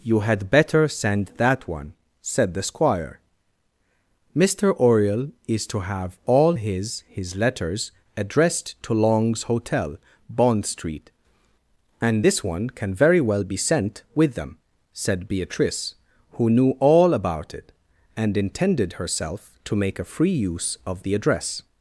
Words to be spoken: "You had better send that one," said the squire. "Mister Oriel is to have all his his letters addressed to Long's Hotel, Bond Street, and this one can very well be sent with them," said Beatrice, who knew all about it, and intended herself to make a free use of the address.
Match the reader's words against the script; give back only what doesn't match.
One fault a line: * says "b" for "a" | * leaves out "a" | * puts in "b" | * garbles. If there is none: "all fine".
all fine